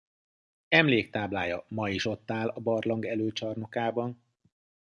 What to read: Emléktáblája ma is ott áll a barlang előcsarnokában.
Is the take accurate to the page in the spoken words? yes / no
yes